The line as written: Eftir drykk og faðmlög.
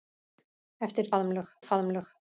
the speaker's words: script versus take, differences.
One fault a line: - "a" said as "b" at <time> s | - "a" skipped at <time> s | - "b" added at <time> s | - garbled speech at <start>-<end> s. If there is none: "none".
- "drykk" said as "faðmlög" at 1.1 s